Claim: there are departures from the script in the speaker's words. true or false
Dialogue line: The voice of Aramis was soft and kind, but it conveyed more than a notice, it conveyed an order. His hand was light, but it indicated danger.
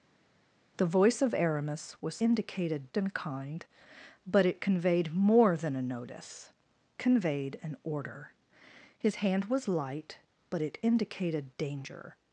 true